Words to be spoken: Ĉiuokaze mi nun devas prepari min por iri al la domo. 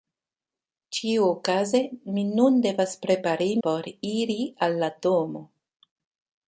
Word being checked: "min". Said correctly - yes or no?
no